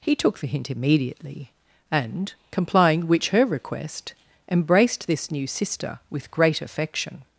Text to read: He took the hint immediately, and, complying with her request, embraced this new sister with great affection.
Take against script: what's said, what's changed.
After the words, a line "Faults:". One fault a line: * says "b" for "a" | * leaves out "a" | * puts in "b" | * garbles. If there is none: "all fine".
He took the hint immediately, and, complying which her request, embraced this new sister with great affection.
Faults:
* says "which" for "with"